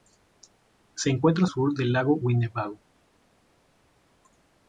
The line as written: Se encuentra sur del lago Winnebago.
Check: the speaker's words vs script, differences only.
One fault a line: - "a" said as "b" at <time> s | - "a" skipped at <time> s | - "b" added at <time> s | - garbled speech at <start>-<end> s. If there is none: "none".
none